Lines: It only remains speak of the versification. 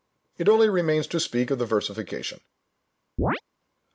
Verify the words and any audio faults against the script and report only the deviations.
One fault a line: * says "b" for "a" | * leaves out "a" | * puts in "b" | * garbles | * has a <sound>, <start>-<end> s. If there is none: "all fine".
* puts in "to"
* has a chirp, 3.2-3.4 s